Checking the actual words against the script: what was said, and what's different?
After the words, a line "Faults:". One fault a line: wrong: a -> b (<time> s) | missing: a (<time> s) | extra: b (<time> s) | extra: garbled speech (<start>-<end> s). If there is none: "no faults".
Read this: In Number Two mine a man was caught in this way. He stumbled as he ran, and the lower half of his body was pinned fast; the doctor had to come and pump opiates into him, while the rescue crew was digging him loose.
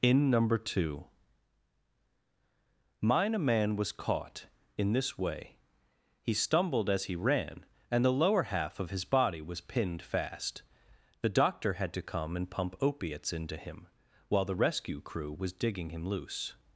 In Number Two mine a man was caught in this way. He stumbled as he ran, and the lower half of his body was pinned fast; the doctor had to come and pump opiates into him, while the rescue crew was digging him loose.
Faults:
no faults